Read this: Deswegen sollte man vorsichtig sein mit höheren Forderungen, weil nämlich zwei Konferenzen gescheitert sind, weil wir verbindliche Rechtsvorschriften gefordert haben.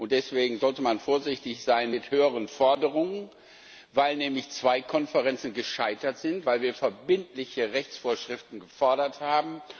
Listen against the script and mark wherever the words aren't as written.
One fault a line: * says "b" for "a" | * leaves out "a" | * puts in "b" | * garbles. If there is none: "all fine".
all fine